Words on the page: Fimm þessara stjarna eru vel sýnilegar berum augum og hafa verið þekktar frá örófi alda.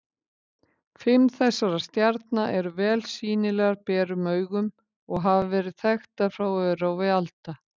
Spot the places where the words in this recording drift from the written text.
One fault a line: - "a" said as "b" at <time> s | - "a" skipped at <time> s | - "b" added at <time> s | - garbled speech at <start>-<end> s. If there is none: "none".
none